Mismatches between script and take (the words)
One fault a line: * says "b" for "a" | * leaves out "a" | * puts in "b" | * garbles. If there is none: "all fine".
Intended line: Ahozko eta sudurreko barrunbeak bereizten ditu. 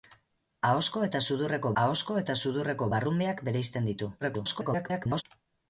* puts in "ahozko eta sudurreko"
* garbles